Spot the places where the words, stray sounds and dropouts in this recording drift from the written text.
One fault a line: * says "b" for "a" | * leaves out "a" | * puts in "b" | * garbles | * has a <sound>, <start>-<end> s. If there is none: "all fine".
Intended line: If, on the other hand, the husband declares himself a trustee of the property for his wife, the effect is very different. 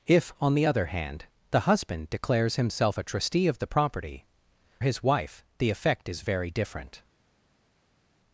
* leaves out "for"